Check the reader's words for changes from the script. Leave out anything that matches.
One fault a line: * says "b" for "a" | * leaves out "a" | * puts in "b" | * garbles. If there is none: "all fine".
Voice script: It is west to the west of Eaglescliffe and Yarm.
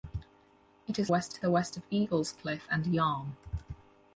all fine